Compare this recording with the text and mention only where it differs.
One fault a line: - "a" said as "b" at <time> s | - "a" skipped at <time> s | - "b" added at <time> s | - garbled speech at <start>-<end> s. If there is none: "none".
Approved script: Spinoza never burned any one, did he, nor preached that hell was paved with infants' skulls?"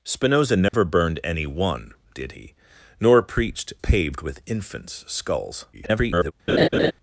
- "that hell was" skipped at 3.7 s
- garbled speech at 5.7-6.3 s